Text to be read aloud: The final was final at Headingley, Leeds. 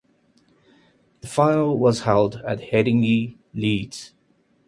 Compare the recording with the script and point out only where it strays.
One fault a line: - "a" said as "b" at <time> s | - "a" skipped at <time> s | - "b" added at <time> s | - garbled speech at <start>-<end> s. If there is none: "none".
- "final" said as "held" at 2.0 s